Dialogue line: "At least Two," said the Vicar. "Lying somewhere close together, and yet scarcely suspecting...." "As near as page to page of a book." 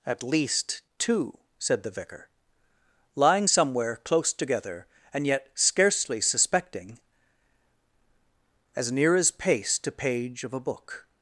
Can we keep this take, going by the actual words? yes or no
no